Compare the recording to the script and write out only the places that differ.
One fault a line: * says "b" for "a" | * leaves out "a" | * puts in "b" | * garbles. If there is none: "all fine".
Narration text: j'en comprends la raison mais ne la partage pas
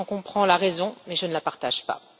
* puts in "je"